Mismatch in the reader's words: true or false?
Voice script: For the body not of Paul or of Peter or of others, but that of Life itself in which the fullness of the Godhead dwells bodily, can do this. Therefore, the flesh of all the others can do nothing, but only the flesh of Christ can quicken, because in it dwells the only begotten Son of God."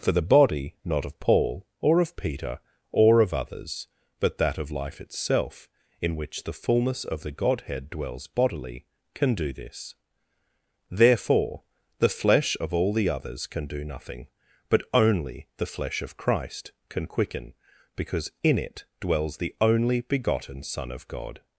false